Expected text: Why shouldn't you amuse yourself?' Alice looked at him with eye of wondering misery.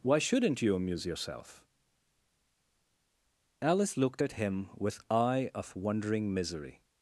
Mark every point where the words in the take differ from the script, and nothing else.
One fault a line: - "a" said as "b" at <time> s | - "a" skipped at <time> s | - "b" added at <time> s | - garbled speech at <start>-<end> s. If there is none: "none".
none